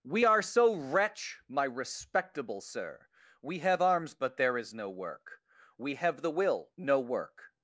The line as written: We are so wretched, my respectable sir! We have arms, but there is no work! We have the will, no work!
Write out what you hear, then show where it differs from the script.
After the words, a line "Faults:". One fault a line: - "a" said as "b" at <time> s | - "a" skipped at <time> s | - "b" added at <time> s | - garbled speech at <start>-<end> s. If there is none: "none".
We are so wretch, my respectable sir! We have arms, but there is no work! We have the will, no work!
Faults:
- "wretched" said as "wretch" at 0.8 s